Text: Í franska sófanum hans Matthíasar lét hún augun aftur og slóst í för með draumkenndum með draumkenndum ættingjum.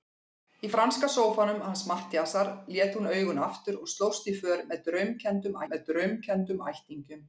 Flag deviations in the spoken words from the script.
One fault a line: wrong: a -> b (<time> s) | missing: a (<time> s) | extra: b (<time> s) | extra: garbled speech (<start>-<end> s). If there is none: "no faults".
no faults